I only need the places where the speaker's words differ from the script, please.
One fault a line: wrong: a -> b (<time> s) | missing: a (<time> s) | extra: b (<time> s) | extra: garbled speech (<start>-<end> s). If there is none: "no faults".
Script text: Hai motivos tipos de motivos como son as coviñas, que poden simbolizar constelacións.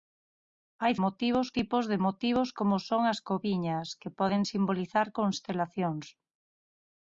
no faults